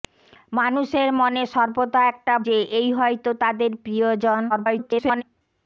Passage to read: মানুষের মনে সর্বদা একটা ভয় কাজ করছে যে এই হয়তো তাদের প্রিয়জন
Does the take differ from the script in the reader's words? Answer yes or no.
yes